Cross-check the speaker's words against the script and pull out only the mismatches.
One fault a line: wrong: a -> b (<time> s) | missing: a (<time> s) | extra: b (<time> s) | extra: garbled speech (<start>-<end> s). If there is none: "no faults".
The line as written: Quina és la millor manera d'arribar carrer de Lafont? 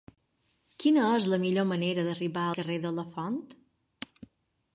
no faults